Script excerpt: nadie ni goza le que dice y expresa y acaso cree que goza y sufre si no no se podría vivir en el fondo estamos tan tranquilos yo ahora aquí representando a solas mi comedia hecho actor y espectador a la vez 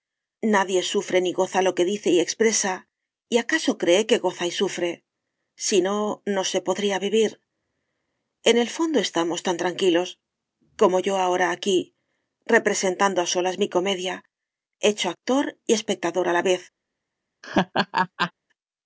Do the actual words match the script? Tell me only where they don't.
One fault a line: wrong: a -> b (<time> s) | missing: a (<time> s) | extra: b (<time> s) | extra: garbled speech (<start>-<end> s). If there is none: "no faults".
extra: sufre (0.9 s)
wrong: le -> lo (1.6 s)
extra: como (10.8 s)